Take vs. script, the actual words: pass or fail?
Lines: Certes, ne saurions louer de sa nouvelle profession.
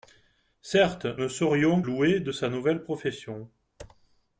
pass